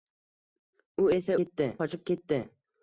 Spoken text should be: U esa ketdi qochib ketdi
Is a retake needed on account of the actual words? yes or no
no